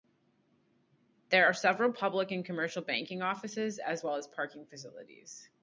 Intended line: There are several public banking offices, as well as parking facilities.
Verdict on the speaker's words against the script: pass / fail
fail